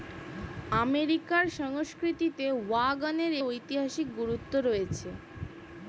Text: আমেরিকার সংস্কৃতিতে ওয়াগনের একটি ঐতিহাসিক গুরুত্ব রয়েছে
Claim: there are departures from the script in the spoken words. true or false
true